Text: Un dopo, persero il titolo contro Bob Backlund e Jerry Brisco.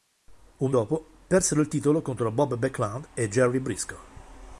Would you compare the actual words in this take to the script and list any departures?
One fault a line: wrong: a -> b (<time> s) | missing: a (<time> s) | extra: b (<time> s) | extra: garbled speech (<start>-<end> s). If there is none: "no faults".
no faults